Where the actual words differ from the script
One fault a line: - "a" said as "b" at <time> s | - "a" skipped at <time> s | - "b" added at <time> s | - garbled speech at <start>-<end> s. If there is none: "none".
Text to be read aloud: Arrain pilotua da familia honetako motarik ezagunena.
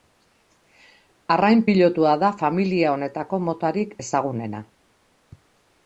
none